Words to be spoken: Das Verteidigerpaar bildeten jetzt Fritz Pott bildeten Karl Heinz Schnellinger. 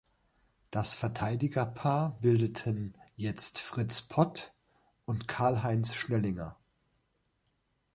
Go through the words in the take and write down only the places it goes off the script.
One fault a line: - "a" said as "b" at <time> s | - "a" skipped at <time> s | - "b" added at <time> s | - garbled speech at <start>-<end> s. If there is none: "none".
- "bildeten" said as "und" at 5.0 s